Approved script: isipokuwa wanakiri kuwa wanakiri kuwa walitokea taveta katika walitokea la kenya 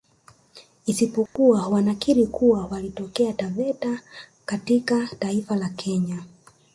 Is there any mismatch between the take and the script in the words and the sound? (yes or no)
yes